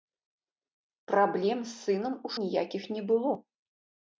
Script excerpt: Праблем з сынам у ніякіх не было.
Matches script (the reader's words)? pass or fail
pass